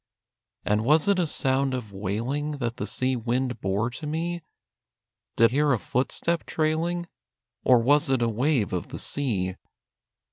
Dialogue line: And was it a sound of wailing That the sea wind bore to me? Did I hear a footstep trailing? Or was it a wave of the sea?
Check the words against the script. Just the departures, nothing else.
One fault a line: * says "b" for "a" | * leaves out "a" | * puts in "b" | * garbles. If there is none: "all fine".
* leaves out "I"